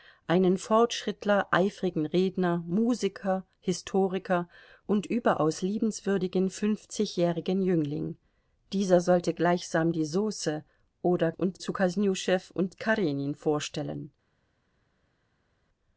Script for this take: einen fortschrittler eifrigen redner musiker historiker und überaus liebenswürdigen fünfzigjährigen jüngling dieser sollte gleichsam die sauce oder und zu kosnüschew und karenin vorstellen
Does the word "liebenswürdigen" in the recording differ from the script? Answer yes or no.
no